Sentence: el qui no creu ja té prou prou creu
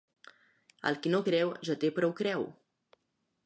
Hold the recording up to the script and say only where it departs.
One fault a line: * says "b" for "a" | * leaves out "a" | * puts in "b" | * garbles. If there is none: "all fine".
* leaves out "prou"